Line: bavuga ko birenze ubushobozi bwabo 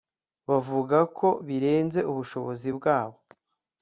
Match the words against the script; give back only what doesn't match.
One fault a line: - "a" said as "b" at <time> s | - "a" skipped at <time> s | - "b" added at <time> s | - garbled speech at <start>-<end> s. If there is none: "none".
none